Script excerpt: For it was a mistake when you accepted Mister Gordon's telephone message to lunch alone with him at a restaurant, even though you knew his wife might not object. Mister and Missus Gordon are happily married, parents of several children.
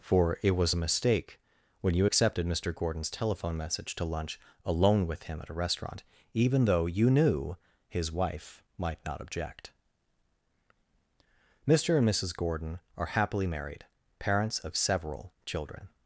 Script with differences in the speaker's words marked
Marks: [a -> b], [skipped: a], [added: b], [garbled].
For it was a mistake when you accepted Mister Gordon's telephone message to lunch alone with him at a restaurant, even though you knew his wife might not object. Mister and Missus Gordon are happily married, parents of several children.